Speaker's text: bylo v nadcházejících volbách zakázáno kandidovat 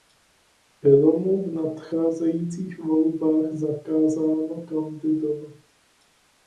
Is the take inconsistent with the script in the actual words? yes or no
yes